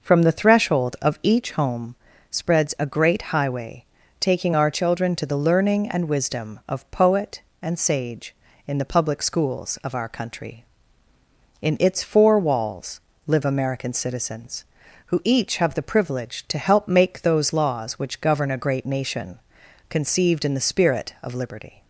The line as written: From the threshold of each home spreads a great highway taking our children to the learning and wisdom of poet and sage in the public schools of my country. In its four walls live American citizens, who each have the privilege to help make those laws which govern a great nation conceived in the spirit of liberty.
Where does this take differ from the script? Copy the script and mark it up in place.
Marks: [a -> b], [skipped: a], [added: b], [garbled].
From the threshold of each home spreads a great highway taking our children to the learning and wisdom of poet and sage in the public schools of [my -> our] country. In its four walls live American citizens, who each have the privilege to help make those laws which govern a great nation conceived in the spirit of liberty.